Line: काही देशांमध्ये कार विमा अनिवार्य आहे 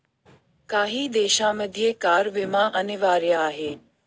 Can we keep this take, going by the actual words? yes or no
yes